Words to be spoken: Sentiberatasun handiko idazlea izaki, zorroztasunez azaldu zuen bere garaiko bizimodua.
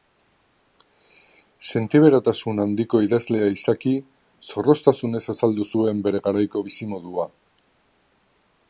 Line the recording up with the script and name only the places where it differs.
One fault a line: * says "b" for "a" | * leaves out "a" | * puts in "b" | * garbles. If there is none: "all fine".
all fine